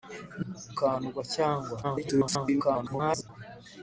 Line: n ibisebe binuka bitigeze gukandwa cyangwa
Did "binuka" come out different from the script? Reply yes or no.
yes